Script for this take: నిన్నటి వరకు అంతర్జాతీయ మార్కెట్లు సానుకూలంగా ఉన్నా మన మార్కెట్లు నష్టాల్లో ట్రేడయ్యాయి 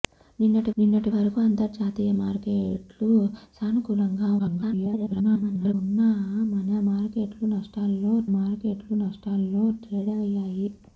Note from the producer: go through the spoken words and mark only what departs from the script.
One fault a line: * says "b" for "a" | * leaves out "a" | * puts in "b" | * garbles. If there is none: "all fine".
* puts in "నిన్నటి"
* garbles
* puts in "మార్కెట్లు నష్టాల్లో"